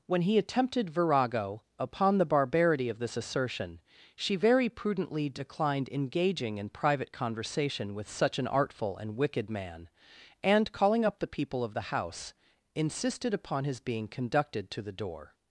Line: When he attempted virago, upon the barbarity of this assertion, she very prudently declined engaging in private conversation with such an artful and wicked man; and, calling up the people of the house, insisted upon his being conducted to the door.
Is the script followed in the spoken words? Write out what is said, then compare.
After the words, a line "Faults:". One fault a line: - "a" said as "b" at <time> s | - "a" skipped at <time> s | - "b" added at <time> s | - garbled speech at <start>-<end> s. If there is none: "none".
When he attempted virago, upon the barbarity of this assertion, she very prudently declined engaging in private conversation with such an artful and wicked man; and, calling up the people of the house, insisted upon his being conducted to the door.
Faults:
none